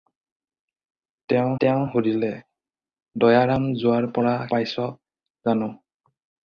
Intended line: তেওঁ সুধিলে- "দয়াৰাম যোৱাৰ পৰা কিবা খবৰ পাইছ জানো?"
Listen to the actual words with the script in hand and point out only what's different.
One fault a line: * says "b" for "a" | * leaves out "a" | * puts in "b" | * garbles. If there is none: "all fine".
* puts in "তেওঁ"
* leaves out "কিবা খবৰ"